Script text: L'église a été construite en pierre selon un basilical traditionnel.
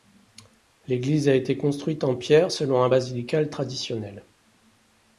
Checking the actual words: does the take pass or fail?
pass